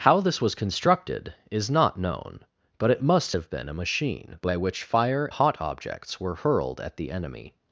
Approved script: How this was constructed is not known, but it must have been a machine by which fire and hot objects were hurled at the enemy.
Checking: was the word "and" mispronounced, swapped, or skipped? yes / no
yes